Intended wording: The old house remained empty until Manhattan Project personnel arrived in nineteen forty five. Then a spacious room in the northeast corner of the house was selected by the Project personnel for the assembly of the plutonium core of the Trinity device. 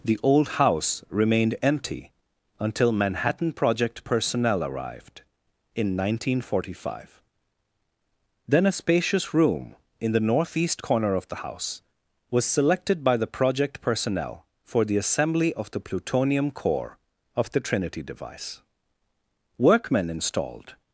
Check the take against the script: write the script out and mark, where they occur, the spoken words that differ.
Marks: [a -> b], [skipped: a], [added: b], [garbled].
The old house remained empty until Manhattan Project personnel arrived in nineteen forty five. Then a spacious room in the northeast corner of the house was selected by the Project personnel for the assembly of the plutonium core of the Trinity device. [added: Workmen installed]